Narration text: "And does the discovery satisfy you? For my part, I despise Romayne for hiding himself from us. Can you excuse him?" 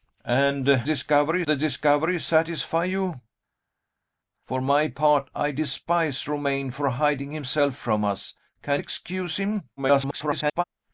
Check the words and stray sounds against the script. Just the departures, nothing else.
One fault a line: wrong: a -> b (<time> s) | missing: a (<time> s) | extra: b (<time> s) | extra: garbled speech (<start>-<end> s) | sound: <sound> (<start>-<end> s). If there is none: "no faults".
wrong: does -> discovery (0.8 s)
missing: you (8.8 s)
extra: garbled speech (9.8-10.6 s)